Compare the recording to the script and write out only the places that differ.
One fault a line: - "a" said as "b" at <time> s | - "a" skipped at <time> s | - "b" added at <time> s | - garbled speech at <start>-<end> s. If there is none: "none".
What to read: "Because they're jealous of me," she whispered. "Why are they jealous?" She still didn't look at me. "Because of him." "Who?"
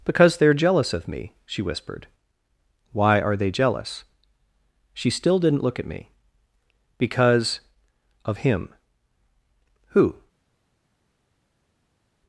none